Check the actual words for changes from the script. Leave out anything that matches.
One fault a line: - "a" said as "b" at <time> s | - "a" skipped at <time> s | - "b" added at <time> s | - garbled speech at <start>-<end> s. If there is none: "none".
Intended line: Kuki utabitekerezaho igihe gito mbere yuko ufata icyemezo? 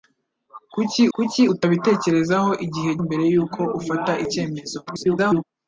- "kuki" added at 1.1 s
- "gito" skipped at 2.9 s
- garbled speech at 4.9-5.4 s